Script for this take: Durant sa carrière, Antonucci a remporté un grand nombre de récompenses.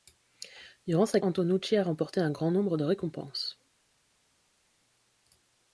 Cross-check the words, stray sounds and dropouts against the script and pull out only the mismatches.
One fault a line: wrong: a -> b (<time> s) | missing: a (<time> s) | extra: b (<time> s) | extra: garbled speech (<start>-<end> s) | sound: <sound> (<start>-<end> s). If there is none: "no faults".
missing: carrière (1.2 s)